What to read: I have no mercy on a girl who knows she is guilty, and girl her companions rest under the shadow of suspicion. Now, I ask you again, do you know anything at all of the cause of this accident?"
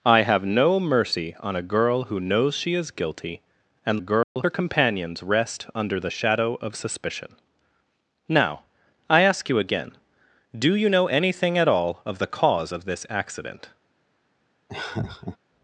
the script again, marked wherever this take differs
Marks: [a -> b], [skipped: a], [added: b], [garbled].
I have no mercy on a girl who knows she is guilty, and girl her companions rest under the shadow of suspicion. Now, I ask you again, do you know anything at all of the cause of this accident?"